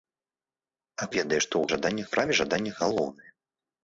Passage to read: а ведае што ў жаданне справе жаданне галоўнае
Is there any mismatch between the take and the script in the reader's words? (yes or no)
no